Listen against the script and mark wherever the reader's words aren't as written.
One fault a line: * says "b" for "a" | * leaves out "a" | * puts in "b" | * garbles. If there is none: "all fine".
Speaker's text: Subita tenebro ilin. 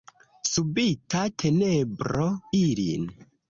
all fine